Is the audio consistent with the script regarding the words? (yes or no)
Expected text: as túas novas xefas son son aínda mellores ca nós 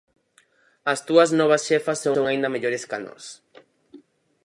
yes